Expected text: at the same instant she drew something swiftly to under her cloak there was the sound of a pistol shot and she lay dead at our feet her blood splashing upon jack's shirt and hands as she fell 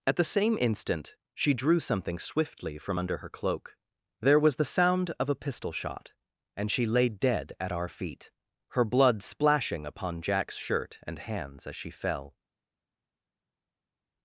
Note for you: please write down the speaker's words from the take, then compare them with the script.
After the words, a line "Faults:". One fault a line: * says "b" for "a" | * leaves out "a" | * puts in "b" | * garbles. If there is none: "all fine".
at the same instant she drew something swiftly from under her cloak there was the sound of a pistol shot and she lay dead at our feet her blood splashing upon jack's shirt and hands as she fell
Faults:
* says "from" for "to"